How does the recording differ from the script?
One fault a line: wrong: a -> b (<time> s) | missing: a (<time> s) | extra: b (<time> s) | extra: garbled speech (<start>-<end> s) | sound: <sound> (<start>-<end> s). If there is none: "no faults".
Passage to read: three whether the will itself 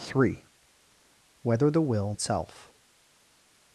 no faults